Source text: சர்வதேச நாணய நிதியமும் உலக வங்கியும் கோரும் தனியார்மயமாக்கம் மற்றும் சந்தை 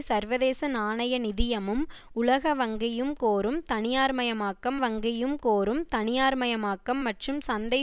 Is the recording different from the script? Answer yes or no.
yes